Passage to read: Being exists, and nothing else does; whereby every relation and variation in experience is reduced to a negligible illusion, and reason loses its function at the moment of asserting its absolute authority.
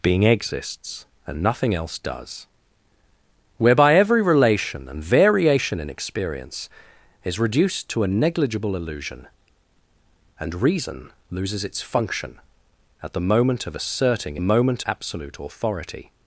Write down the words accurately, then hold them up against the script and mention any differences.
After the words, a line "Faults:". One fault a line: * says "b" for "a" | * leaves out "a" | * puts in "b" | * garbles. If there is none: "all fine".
Being exists, and nothing else does; whereby every relation and variation in experience is reduced to a negligible illusion, and reason loses its function at the moment of asserting moment absolute authority.
Faults:
* says "moment" for "its"